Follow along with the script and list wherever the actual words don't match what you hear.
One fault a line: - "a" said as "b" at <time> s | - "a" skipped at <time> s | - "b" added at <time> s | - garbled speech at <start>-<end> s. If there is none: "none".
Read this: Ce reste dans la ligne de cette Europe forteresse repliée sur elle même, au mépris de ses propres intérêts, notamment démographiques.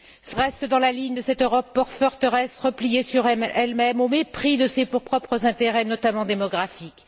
none